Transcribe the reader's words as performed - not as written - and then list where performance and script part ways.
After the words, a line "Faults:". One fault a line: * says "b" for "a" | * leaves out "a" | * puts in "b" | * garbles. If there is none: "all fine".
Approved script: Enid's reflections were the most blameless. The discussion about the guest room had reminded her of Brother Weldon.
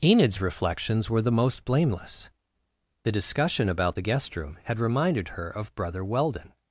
Enid's reflections were the most blameless. The discussion about the guest room had reminded her of Brother Weldon.
Faults:
all fine